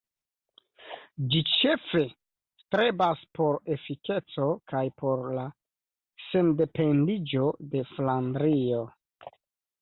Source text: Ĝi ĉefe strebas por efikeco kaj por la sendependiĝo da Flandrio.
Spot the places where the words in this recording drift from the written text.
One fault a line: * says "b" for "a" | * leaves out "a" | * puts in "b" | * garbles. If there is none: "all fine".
* says "de" for "da"